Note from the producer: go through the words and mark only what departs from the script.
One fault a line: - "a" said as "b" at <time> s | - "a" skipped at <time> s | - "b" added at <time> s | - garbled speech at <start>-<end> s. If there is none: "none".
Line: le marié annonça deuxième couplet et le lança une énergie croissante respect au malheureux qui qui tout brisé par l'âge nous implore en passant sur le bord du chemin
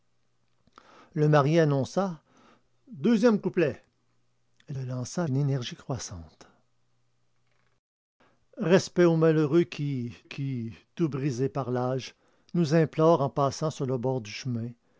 none